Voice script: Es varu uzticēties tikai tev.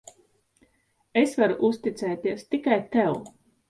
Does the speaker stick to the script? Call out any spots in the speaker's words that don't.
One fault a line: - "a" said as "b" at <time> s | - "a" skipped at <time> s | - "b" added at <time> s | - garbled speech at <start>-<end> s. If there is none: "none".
none